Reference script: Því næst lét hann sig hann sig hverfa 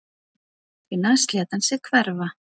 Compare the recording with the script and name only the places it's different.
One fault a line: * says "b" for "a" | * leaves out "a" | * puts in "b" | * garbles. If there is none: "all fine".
* leaves out "hann sig"